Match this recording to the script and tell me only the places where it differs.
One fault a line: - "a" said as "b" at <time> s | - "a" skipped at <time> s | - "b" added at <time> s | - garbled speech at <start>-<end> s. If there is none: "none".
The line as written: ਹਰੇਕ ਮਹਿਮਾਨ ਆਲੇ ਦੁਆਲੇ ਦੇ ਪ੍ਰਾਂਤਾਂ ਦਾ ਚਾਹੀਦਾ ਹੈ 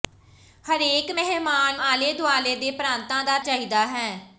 none